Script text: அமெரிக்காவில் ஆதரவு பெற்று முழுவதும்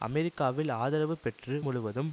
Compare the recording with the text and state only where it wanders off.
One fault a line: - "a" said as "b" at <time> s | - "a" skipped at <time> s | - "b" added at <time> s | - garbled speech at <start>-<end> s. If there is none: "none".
none